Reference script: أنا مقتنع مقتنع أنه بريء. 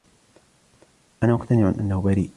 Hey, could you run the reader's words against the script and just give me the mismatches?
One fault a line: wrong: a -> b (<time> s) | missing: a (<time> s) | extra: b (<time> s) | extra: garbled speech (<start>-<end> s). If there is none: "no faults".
missing: مقتنع (1.7 s)